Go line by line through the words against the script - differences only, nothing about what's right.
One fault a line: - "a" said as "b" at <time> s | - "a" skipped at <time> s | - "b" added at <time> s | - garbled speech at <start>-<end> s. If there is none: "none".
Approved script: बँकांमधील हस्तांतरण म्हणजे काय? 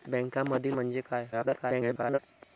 - "हस्तांतरण" skipped at 0.8 s
- garbled speech at 1.3-2.2 s